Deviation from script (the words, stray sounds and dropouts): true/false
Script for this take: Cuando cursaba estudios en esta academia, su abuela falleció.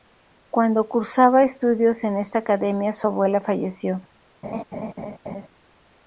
true